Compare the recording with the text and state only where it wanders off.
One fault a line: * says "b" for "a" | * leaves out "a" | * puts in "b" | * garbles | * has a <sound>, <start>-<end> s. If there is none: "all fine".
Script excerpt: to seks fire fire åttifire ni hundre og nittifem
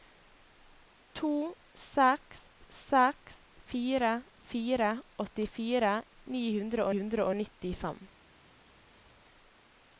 * puts in "seks"
* puts in "hundre"